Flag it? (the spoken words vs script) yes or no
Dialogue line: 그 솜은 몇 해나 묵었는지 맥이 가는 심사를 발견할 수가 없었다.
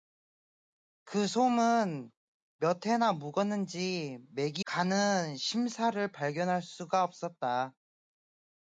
no